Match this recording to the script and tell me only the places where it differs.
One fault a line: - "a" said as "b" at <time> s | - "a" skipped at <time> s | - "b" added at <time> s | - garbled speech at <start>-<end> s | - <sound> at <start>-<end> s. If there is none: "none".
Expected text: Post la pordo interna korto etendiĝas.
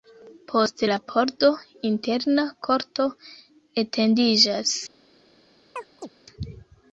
- chirp at 5.8-6.1 s